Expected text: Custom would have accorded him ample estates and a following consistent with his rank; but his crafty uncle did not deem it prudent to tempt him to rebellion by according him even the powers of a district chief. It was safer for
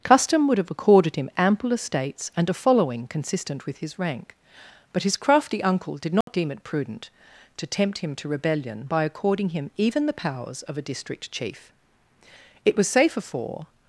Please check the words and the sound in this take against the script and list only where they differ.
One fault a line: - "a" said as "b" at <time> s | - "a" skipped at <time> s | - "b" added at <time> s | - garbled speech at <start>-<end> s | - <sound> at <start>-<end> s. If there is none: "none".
- dropout at 6.2-6.3 s